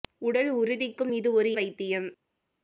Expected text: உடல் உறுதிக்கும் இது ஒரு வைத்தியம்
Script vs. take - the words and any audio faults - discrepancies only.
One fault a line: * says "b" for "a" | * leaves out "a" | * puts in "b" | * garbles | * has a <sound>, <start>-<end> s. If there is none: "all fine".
all fine